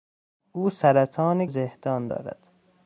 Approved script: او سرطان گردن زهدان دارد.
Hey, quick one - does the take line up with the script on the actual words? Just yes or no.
no